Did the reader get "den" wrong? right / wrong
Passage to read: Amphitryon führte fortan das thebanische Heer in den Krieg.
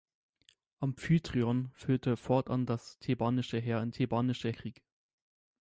wrong